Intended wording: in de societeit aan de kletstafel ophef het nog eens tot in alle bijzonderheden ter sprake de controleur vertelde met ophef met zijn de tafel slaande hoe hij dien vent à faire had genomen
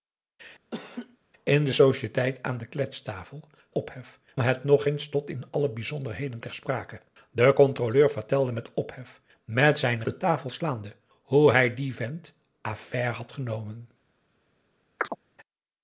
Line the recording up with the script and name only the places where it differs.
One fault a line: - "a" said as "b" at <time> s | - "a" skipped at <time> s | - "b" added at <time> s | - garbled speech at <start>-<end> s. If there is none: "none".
none